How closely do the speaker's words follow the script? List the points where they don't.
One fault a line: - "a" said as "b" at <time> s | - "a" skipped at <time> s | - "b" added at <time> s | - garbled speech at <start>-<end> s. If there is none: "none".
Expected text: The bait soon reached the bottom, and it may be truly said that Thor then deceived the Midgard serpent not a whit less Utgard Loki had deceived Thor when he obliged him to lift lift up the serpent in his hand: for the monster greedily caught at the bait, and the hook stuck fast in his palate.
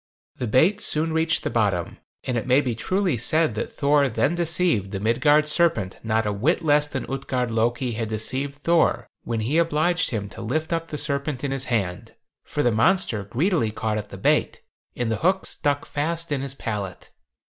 - "than" added at 6.9 s
- "lift" skipped at 10.7 s